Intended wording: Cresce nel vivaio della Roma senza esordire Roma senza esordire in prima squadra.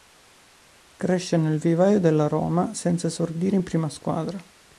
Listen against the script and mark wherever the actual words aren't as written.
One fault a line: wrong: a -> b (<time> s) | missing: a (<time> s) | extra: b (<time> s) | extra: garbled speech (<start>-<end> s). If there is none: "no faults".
missing: Roma senza esordire (3.6 s)